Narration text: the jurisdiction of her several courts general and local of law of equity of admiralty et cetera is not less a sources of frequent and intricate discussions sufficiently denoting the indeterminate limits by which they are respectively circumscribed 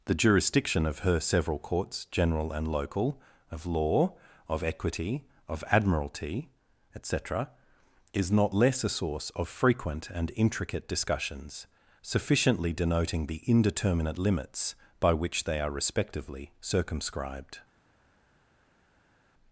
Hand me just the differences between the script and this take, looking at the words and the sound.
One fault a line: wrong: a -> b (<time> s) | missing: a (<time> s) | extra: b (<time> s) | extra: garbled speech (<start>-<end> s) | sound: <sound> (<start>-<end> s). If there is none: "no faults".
wrong: sources -> source (8.9 s)